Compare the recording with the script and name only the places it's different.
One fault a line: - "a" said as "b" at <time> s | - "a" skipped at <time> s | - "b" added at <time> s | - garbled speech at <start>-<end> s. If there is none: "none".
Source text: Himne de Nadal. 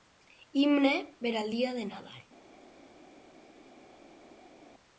- "per al dia" added at 1.2 s